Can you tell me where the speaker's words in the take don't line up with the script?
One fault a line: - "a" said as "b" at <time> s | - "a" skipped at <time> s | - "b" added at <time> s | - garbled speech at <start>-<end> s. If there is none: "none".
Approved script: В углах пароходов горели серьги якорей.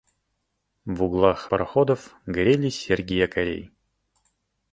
none